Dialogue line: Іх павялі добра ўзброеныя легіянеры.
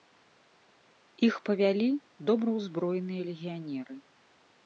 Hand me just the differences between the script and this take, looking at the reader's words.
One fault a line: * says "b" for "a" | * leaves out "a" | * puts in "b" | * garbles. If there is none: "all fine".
all fine